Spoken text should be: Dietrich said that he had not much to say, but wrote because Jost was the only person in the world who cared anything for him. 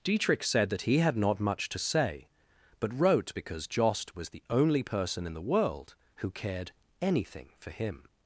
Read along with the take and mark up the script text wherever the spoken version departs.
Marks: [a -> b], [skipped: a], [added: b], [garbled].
Dietrich said that he had not much to say, but wrote because Jost was the only person in the world who cared anything for him.